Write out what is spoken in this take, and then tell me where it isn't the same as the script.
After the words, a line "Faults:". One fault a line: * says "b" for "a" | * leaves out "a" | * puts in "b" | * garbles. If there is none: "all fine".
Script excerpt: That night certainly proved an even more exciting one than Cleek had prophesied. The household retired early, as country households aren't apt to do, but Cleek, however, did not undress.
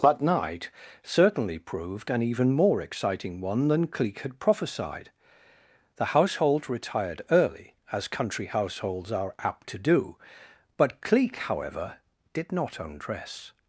That night certainly proved an even more exciting one than Cleek had prophesied. The household retired early, as country households are apt to do, but Cleek, however, did not undress.
Faults:
* says "are" for "aren't"